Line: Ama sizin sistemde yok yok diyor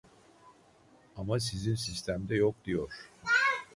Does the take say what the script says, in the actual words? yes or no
no